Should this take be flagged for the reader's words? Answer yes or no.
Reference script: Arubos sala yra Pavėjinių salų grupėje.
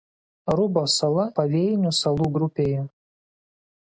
yes